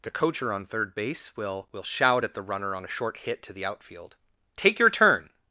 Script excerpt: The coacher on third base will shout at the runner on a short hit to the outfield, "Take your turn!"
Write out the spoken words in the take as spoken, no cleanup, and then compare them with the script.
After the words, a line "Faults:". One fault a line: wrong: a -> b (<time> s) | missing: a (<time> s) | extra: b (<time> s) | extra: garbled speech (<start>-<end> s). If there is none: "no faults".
The coacher on third base will will shout at the runner on a short hit to the outfield, "Take your turn!"
Faults:
extra: will (1.7 s)